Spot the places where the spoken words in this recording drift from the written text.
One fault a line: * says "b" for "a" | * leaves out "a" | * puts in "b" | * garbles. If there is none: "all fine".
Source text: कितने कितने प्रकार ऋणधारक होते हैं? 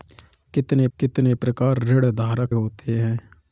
all fine